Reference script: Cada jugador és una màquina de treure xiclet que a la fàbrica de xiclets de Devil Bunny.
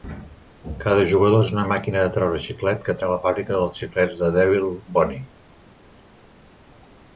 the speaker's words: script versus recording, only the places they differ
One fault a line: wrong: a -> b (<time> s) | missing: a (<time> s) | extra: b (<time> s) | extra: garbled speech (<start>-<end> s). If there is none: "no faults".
no faults